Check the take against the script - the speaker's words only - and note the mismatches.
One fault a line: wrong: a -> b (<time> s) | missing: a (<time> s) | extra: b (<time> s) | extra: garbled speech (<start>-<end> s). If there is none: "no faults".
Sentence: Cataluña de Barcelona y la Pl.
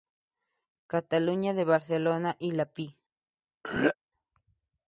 no faults